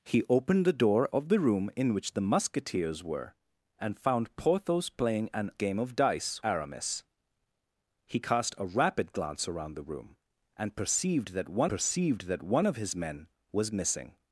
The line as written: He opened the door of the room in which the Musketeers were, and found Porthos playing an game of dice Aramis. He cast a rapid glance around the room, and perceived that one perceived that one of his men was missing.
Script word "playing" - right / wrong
right